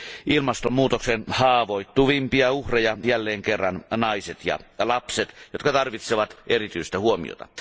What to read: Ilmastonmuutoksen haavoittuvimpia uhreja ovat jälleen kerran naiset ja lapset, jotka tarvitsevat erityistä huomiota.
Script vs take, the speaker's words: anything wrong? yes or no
yes